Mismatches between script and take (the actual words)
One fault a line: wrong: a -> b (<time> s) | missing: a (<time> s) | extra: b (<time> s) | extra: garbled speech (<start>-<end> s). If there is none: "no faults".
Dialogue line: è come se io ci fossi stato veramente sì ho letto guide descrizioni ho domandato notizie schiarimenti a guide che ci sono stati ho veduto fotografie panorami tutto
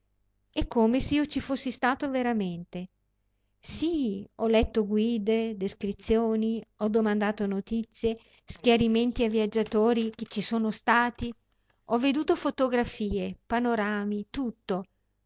wrong: guide -> viaggiatori (9.3 s)